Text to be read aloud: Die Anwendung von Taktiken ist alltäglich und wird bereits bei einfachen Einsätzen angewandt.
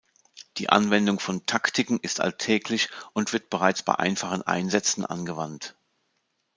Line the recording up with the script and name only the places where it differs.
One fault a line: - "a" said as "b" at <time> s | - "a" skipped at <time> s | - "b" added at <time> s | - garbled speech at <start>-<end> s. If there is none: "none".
none